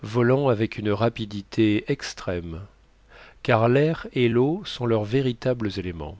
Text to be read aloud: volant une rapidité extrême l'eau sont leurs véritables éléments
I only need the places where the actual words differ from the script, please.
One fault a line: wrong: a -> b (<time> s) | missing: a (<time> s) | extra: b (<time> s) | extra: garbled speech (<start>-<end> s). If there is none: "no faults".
extra: avec (0.5 s)
extra: car l'air et (3.4 s)